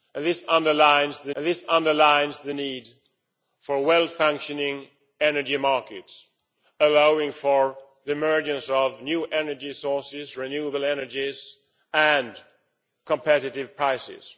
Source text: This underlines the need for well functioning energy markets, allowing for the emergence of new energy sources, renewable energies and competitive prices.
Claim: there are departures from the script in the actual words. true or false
true